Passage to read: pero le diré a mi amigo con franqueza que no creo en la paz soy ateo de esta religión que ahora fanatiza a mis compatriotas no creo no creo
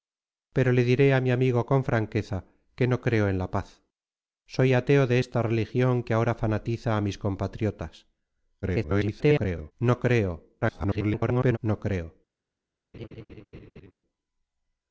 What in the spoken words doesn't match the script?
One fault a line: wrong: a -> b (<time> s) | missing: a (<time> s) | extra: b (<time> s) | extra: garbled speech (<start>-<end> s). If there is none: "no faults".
extra: garbled speech (8.6-9.7 s)
extra: garbled speech (10.6-11.6 s)